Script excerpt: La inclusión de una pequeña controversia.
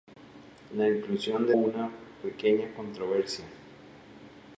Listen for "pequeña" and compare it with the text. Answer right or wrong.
right